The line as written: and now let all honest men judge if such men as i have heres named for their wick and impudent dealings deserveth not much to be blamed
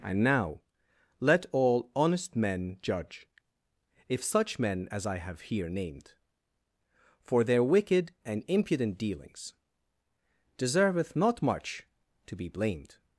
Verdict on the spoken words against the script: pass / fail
fail